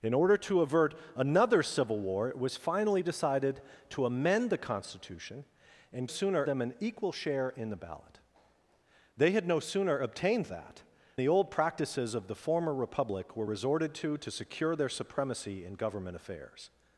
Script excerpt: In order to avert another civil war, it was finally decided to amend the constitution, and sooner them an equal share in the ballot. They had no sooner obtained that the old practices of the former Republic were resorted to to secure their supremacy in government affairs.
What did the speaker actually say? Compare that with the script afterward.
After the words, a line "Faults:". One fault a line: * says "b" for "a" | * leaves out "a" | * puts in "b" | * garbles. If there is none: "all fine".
In order to avert another civil war, it was finally decided to amend the constitution, and sooner them an equal share in the ballot. They had no sooner obtained that the old practices of the former Republic were resorted to to secure their supremacy in government affairs.
Faults:
all fine